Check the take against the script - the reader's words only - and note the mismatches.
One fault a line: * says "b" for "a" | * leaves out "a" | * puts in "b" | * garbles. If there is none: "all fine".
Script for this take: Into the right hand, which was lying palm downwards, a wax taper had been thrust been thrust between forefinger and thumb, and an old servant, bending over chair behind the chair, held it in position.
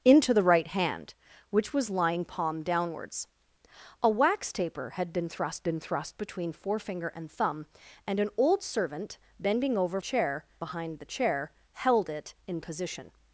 all fine